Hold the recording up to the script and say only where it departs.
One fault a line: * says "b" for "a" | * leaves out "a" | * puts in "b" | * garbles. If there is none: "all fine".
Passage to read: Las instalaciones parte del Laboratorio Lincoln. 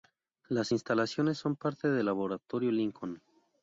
* puts in "son"